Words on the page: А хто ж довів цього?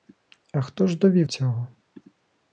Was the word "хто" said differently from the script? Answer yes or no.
no